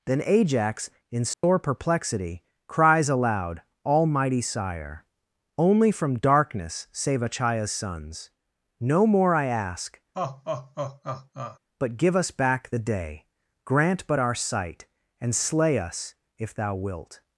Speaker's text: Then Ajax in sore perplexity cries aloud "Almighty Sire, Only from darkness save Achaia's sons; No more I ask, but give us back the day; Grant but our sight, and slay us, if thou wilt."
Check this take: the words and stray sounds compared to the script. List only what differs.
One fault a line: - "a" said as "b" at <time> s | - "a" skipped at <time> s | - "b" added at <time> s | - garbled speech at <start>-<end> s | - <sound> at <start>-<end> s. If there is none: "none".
- dropout at 1.3-1.4 s
- laugh at 10.1-11.6 s